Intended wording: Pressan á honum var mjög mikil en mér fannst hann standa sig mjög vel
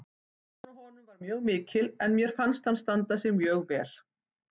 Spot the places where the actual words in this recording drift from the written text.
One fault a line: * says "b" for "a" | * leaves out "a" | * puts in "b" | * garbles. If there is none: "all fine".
all fine